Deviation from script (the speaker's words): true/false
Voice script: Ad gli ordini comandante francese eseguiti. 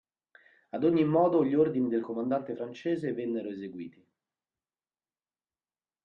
true